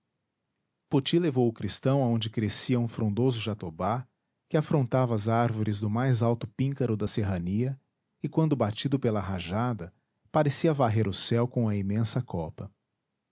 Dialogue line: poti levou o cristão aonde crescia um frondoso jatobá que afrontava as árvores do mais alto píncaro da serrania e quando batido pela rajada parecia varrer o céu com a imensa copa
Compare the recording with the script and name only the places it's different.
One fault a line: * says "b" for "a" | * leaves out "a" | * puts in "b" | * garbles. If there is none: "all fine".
all fine